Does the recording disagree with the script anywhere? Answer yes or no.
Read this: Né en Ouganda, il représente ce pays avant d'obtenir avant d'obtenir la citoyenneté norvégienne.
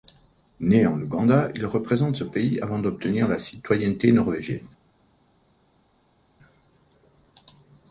yes